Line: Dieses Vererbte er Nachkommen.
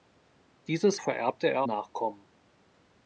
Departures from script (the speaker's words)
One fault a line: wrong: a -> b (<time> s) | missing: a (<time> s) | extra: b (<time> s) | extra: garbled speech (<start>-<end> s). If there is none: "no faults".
no faults